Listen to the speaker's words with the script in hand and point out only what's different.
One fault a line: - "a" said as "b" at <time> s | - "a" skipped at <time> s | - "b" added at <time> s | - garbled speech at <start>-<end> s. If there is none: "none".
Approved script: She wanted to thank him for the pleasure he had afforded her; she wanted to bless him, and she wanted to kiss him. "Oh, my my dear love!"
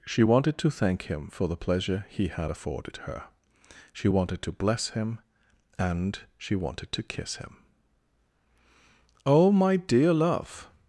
- "my" skipped at 9.8 s